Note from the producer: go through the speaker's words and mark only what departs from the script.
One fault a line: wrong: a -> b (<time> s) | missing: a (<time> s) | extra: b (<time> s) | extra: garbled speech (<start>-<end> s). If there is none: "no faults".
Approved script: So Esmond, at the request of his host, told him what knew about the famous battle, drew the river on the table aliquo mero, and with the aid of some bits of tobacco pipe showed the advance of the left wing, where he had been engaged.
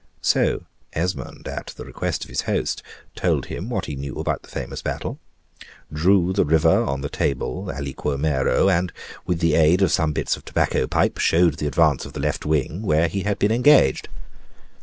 extra: he (3.9 s)